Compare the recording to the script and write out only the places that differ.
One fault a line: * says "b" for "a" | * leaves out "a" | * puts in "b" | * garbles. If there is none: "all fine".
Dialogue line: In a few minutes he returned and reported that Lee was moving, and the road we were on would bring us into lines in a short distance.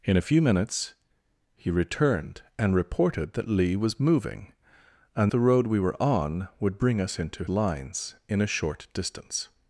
all fine